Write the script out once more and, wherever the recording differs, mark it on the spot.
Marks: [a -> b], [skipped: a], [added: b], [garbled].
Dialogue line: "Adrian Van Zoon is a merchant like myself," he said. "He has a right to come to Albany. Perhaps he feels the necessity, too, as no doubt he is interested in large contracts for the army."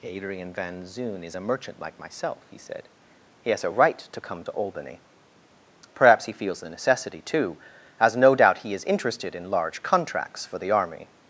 "Adrian Van Zoon is a merchant like myself," he said. "He has a right to come to Albany. Perhaps he feels the necessity, too, as no doubt he is interested in large contracts for the army."